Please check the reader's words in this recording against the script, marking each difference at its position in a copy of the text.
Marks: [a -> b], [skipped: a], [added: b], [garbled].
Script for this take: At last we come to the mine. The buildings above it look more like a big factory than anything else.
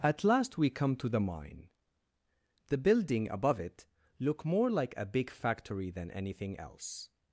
At last we come to the mine. The [buildings -> building] above it look more like a big factory than anything else.